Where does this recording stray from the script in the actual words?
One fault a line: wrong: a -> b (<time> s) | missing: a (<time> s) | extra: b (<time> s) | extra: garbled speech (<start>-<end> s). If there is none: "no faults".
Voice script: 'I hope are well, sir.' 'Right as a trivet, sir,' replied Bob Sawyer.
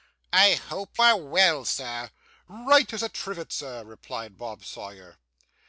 no faults